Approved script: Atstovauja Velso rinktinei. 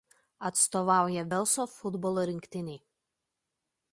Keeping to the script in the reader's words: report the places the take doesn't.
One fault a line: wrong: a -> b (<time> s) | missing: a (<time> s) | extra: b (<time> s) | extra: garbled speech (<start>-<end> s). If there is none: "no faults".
extra: futbolo (1.7 s)